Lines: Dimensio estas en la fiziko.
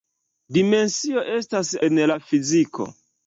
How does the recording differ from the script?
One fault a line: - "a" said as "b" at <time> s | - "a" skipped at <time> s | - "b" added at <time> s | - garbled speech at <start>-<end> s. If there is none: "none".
none